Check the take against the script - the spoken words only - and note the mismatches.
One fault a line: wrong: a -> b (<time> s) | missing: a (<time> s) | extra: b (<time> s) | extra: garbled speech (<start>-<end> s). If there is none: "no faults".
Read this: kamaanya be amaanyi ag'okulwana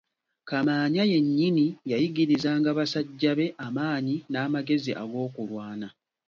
extra: yennyini yayigirizanga basajja (1.1 s)
extra: n'amagezi (4.3 s)